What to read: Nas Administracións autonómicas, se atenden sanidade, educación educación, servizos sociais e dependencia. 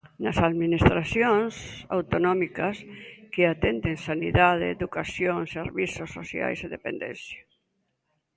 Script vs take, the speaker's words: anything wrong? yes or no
yes